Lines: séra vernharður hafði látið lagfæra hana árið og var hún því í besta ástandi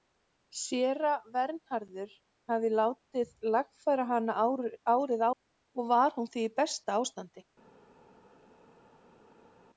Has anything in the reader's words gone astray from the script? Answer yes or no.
no